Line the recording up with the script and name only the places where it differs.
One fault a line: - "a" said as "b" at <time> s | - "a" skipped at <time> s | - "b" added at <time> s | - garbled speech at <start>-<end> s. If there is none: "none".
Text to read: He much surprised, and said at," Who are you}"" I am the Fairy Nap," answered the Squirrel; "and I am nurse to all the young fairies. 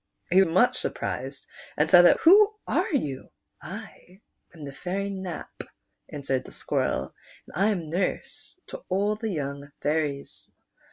none